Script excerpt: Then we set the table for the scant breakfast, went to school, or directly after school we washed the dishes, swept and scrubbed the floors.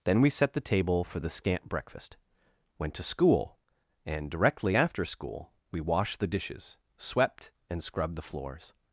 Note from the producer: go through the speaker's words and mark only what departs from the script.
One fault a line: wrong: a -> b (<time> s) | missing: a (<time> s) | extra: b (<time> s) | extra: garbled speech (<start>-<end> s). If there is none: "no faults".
wrong: or -> and (4.0 s)